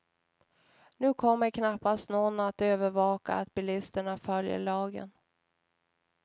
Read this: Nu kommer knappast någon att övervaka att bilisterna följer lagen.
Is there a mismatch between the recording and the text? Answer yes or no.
no